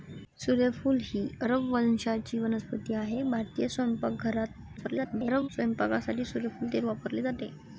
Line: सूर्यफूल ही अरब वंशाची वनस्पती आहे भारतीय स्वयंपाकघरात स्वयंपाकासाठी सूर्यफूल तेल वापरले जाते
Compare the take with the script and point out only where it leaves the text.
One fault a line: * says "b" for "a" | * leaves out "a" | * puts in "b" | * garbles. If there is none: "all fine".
* garbles